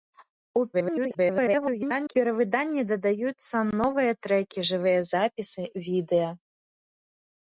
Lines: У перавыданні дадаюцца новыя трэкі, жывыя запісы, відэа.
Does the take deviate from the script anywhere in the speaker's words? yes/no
yes